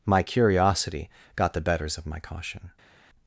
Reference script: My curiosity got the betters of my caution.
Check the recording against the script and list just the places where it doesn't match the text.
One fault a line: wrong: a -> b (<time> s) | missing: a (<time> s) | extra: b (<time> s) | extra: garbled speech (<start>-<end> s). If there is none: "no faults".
no faults